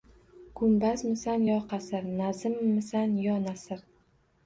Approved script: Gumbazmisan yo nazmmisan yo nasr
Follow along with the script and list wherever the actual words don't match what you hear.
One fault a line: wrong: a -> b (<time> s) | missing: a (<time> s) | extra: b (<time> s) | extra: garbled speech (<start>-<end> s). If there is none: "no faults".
extra: qasr (1.7 s)